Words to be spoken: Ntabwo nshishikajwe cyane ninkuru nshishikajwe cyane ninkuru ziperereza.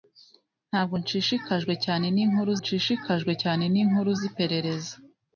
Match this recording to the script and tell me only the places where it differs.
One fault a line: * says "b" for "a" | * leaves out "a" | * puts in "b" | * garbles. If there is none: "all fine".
all fine